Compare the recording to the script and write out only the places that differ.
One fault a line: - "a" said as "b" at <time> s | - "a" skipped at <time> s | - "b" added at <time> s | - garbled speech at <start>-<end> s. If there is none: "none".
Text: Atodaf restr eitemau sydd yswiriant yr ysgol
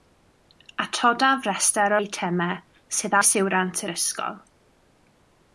none